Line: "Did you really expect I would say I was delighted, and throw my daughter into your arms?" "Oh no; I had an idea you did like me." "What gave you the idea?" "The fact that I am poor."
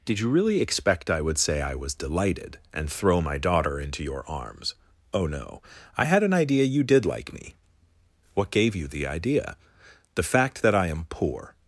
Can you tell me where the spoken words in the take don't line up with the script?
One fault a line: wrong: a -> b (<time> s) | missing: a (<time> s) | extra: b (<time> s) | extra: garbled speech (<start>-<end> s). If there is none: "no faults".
no faults